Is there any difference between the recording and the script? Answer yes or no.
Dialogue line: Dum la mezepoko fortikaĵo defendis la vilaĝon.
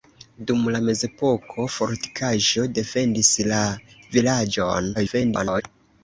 yes